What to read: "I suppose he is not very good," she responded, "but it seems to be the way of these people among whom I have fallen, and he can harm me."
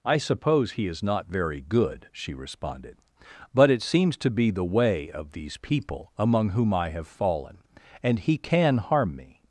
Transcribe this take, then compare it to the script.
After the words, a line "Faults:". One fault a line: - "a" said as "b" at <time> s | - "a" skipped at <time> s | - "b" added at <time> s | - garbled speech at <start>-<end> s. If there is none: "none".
"I suppose he is not very good," she responded, "but it seems to be the way of these people among whom I have fallen, and he can harm me."
Faults:
none